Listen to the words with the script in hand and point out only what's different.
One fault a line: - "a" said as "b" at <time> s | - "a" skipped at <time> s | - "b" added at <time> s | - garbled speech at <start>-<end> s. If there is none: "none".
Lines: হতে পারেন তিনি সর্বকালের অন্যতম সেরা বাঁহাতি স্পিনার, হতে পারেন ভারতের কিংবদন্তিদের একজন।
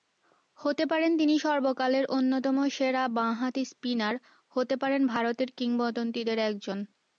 none